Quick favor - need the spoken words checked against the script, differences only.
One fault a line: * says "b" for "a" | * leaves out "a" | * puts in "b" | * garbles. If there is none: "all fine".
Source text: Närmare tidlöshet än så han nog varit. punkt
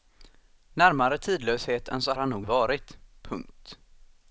all fine